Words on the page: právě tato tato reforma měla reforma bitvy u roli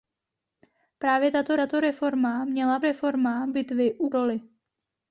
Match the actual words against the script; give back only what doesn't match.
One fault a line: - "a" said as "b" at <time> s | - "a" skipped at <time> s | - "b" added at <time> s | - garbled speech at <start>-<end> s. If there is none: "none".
none